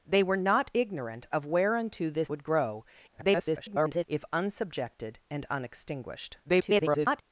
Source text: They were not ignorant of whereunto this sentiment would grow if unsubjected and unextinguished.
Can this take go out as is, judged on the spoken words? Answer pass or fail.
fail